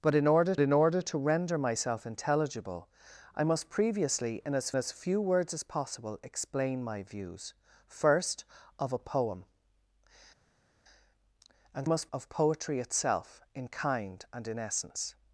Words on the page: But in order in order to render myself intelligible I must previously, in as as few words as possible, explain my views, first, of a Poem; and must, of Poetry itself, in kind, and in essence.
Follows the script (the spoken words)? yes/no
yes